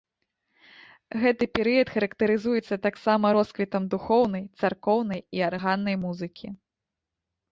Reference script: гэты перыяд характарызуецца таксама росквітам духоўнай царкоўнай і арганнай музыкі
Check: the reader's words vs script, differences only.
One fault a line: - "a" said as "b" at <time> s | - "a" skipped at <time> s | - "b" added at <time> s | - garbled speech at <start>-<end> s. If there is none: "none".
none